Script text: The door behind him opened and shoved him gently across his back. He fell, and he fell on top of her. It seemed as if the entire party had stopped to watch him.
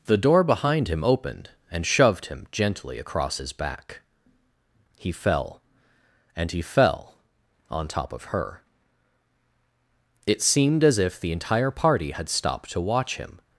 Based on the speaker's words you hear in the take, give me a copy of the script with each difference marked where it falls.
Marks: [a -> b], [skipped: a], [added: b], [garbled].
The door behind him opened and shoved him gently across his back. He fell, and he fell on top of her. It seemed as if the entire party had stopped to watch him.